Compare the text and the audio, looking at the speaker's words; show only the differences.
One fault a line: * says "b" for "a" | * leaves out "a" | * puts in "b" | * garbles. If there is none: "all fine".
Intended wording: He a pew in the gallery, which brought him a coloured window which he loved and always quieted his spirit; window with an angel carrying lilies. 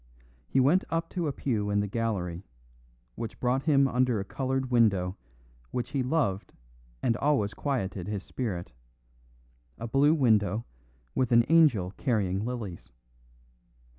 * puts in "went up to"
* puts in "under"
* puts in "a blue"